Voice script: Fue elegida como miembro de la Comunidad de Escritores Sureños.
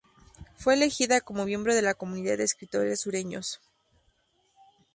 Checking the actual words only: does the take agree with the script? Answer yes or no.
yes